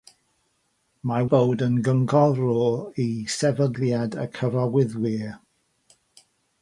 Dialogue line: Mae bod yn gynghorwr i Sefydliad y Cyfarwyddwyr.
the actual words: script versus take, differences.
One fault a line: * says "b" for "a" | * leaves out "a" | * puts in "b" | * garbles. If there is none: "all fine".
all fine